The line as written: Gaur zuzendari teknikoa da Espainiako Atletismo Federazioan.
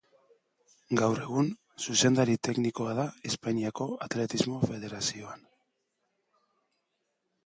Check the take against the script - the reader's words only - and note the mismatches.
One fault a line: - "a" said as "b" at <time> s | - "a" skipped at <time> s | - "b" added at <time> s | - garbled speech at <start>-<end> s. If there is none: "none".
- "egun" added at 1.2 s